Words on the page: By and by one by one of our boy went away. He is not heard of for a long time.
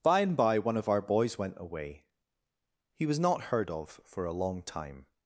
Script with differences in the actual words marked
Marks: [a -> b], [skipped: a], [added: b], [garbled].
By and by one [skipped: by one] of our [boy -> boys] went away. He [is -> was] not heard of for a long time.